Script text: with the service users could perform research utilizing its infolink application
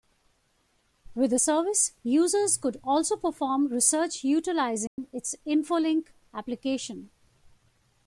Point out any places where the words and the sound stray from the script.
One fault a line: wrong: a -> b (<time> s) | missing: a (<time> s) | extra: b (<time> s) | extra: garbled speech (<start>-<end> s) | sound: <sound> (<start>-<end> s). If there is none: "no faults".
extra: also (2.8 s)
sound: dropout (4.9-5.0 s)